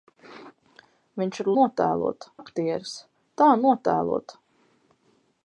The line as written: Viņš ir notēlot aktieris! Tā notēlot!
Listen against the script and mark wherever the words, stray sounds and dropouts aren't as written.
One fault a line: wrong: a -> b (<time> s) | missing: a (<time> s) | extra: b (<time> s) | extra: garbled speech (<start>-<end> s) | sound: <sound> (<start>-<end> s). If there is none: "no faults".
no faults